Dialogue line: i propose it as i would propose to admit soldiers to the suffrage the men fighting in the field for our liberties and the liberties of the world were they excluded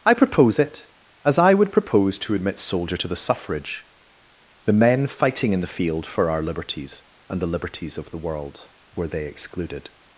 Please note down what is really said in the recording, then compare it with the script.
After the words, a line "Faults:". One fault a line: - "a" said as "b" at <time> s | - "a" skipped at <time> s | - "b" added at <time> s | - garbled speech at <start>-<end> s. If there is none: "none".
i propose it as i would propose to admit soldier to the suffrage the men fighting in the field for our liberties and the liberties of the world were they excluded
Faults:
- "soldiers" said as "soldier" at 2.6 s